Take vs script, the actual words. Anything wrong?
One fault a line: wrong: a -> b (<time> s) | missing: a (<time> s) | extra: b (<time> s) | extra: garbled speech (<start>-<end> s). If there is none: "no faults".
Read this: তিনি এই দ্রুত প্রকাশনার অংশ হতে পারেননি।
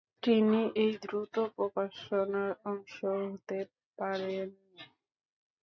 no faults